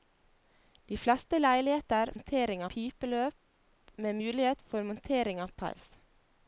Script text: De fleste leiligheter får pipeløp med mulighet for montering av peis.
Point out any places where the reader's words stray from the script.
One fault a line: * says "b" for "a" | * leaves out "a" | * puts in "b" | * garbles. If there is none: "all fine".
* says "montering" for "får"